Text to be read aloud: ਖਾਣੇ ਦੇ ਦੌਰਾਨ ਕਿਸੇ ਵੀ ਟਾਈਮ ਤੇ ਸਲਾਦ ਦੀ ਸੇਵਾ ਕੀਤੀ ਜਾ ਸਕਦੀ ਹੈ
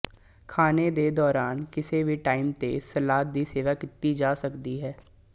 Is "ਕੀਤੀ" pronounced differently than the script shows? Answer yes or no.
no